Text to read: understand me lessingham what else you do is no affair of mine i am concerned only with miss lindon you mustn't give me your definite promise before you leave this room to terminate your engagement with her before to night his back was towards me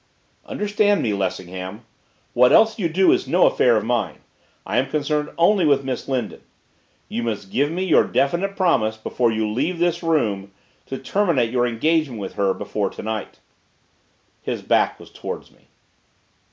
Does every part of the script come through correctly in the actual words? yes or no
no